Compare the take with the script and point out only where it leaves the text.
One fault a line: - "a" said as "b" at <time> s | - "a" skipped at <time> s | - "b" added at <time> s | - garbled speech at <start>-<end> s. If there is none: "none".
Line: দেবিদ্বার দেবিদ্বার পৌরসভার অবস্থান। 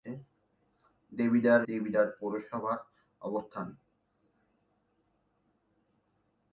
none